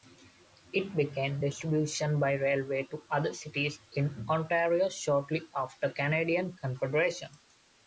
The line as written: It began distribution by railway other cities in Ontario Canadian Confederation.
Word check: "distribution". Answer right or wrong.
right